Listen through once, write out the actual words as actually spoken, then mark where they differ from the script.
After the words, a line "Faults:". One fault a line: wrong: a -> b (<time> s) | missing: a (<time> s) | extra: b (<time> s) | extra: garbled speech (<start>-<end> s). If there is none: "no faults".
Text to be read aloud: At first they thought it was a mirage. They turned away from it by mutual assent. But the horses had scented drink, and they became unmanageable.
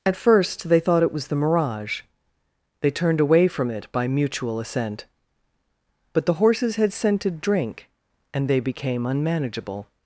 At first they thought it was the mirage. They turned away from it by mutual assent. But the horses had scented drink, and they became unmanageable.
Faults:
wrong: a -> the (1.3 s)